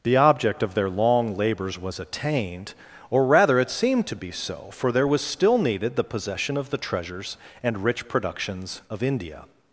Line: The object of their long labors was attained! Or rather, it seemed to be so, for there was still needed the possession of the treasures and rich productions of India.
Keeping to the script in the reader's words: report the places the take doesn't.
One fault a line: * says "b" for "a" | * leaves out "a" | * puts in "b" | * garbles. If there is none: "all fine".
all fine